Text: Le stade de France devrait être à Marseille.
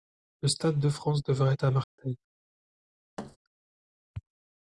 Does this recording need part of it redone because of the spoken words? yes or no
no